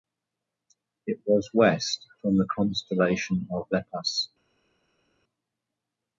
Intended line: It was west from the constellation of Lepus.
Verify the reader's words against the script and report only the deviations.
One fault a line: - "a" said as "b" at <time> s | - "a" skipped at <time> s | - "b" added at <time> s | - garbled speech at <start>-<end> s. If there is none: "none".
none